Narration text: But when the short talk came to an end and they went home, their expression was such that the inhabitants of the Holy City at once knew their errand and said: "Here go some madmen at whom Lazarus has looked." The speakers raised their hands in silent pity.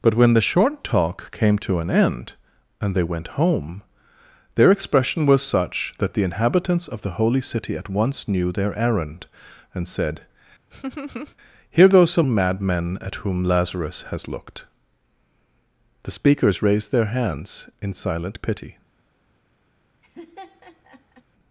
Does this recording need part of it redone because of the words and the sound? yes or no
yes